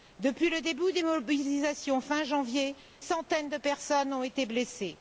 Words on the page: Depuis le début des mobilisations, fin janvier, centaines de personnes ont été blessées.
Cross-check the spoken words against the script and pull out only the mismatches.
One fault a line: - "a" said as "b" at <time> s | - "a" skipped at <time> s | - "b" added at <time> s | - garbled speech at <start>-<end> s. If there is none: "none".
none